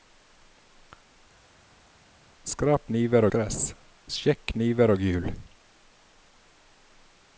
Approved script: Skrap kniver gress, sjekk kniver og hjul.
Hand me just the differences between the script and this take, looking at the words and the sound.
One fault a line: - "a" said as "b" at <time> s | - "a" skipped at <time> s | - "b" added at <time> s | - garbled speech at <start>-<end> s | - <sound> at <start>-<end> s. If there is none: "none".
none